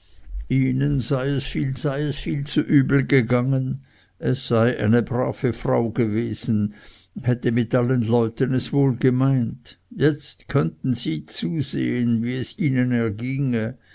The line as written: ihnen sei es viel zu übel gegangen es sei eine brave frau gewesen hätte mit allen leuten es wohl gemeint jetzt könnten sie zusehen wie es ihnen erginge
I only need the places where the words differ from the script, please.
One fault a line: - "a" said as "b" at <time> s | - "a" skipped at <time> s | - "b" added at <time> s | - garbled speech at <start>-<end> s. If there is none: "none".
- "sei es viel" added at 1.7 s